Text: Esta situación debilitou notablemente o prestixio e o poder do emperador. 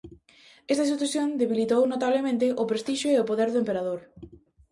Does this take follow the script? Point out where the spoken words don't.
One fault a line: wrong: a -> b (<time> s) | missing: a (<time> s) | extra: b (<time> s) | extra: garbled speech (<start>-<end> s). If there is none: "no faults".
no faults